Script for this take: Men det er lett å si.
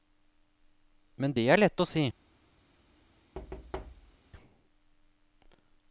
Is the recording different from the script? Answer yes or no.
no